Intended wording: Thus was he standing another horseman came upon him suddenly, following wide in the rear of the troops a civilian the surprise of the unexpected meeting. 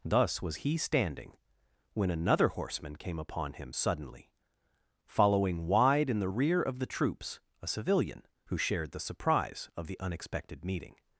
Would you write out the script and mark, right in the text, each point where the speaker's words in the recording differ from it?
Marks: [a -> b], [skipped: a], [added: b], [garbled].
Thus was he standing [added: when] another horseman came upon him suddenly, following wide in the rear of the troops a civilian [added: who shared] the surprise of the unexpected meeting.